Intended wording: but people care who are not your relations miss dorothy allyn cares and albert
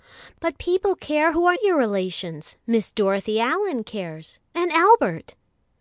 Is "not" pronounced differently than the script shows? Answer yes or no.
yes